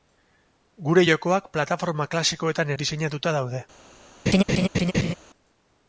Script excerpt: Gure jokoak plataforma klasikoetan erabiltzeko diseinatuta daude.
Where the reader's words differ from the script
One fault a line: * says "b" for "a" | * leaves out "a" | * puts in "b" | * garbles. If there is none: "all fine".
* leaves out "erabiltzeko"